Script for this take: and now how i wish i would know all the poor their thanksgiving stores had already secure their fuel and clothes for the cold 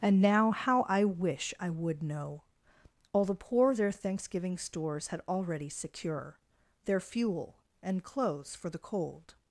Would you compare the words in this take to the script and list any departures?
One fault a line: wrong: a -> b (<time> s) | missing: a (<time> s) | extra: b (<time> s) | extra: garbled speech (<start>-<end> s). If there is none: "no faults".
no faults